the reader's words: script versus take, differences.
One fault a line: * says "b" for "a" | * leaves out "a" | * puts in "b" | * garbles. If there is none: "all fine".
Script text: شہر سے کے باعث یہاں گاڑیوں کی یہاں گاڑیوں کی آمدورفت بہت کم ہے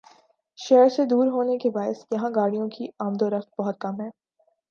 * puts in "دور ہونے"
* leaves out "یہاں گاڑیوں کی"